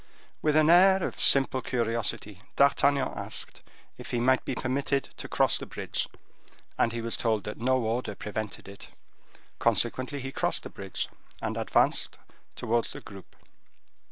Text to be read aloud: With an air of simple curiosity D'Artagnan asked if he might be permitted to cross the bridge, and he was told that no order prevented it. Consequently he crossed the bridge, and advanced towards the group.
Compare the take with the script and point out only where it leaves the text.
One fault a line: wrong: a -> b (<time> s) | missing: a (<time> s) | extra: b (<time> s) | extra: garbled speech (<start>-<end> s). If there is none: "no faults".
no faults